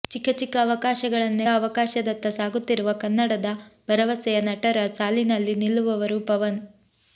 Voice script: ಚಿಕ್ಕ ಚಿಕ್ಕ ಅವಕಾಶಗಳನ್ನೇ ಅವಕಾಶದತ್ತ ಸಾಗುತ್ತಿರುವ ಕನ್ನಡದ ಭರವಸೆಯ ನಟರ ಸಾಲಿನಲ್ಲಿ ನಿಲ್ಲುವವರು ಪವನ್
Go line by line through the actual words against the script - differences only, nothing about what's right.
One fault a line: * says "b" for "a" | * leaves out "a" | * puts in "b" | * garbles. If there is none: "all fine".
all fine